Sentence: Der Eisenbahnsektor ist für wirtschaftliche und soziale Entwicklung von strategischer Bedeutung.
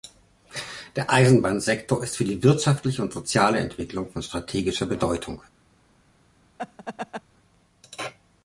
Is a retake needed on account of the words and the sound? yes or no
yes